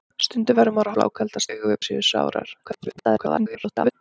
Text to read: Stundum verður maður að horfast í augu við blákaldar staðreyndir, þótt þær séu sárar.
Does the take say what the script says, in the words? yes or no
no